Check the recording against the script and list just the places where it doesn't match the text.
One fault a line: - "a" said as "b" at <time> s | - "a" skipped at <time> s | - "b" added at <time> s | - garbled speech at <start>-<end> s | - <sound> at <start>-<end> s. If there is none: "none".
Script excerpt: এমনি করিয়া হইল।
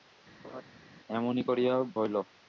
- laugh at 0.4-0.6 s